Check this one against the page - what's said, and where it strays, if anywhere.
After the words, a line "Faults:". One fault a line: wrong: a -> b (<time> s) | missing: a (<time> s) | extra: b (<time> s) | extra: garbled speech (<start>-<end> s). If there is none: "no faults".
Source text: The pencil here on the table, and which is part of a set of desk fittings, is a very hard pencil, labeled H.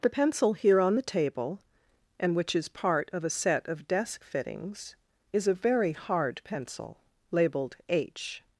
The pencil here on the table, and which is part of a set of desk fittings, is a very hard pencil, labeled H.
Faults:
no faults